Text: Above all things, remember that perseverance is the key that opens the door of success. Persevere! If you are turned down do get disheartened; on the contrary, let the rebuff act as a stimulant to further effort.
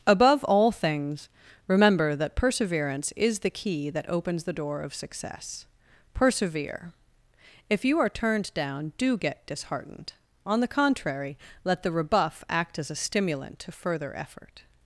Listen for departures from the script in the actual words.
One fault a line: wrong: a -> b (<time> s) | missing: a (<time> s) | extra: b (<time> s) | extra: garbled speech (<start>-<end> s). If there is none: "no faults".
no faults